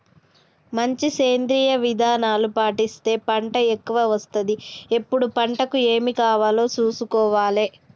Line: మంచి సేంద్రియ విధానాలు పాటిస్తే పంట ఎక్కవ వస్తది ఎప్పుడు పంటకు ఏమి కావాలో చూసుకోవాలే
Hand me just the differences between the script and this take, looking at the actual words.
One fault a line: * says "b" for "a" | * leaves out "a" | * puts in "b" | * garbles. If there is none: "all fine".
all fine